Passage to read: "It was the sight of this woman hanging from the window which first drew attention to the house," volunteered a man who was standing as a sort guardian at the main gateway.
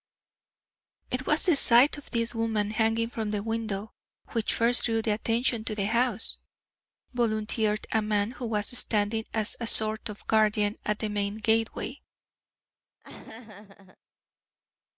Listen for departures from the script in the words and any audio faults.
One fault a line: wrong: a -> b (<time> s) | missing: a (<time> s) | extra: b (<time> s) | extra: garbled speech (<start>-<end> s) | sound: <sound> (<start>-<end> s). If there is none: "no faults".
extra: of (10.1 s)
sound: laugh (13.0-14.0 s)